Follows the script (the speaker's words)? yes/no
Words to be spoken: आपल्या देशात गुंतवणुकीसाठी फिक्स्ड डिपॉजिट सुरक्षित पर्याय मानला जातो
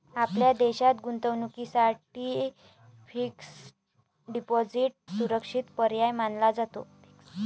yes